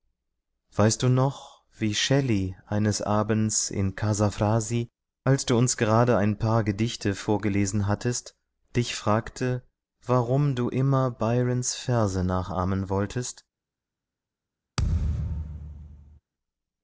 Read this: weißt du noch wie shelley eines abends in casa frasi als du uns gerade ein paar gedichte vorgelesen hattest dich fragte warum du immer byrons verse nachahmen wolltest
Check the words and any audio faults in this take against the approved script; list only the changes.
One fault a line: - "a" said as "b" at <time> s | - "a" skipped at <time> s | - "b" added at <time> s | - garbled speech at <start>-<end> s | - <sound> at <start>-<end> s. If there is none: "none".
- thud at 14.8-16.2 s